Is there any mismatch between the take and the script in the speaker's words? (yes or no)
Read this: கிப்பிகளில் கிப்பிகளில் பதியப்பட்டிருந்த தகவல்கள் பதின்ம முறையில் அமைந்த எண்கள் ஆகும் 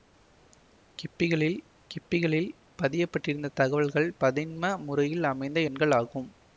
no